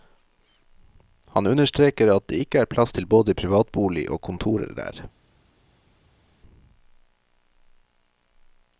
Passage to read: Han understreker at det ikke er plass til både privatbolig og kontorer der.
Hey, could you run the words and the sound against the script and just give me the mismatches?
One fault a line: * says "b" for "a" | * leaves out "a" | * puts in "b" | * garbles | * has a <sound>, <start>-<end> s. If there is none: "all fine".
all fine